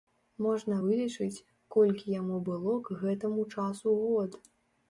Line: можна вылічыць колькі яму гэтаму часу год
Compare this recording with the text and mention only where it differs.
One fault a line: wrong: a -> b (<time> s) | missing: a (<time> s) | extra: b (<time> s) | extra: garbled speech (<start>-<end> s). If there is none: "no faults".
extra: было к (2.5 s)